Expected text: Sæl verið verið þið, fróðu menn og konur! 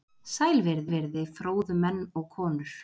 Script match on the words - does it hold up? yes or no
yes